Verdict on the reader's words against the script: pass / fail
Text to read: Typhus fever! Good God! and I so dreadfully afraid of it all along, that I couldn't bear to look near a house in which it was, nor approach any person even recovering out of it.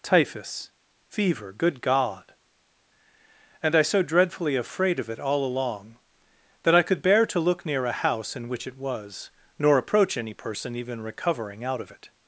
fail